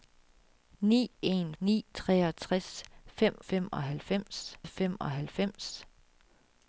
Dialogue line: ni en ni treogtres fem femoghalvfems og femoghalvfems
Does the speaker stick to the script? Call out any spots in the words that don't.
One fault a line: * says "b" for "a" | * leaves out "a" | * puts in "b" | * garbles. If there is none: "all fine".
all fine